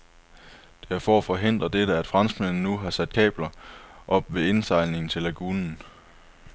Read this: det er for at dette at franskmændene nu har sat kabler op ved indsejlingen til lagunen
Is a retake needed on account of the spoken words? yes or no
yes